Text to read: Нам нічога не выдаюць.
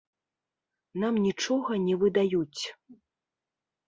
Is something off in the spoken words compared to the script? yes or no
no